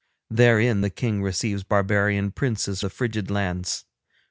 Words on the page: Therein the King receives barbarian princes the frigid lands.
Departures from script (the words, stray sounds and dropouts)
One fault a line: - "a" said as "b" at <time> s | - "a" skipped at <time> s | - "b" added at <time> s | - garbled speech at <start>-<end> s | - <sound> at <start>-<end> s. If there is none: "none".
none